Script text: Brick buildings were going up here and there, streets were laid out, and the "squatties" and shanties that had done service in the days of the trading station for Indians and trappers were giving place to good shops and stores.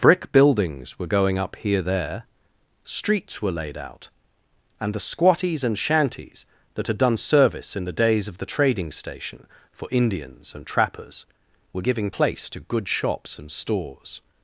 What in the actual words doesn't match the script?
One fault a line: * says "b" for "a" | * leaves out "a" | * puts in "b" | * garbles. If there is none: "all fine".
* leaves out "and"